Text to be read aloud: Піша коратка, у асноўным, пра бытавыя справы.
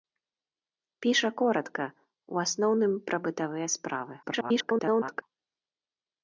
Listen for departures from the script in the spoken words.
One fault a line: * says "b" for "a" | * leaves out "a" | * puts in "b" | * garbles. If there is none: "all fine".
* garbles